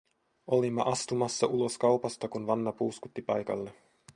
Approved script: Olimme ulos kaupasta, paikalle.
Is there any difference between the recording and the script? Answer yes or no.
yes